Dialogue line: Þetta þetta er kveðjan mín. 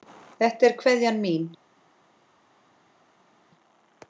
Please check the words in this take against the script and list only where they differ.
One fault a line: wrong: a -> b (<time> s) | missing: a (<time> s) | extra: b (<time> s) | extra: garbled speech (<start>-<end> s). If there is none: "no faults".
missing: þetta (0.7 s)